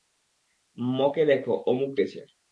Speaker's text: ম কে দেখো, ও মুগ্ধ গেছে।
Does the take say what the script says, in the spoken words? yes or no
yes